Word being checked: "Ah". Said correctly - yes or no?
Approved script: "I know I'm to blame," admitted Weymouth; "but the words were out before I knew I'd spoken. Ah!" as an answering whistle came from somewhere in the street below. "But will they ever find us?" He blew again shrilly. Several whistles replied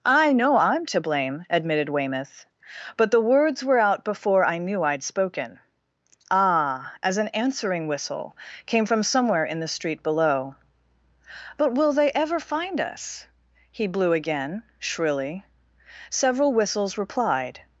yes